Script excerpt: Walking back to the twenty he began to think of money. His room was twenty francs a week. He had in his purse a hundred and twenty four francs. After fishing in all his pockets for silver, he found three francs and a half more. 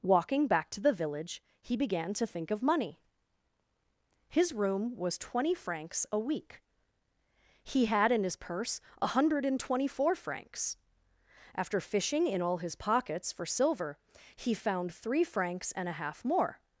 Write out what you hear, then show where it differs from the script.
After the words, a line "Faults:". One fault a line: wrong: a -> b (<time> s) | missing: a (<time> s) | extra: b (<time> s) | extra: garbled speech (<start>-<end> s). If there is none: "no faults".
Walking back to the village he began to think of money. His room was twenty francs a week. He had in his purse a hundred and twenty four francs. After fishing in all his pockets for silver, he found three francs and a half more.
Faults:
wrong: twenty -> village (0.9 s)